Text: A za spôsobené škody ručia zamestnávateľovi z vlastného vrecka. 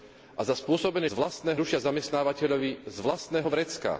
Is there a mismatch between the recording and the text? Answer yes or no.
yes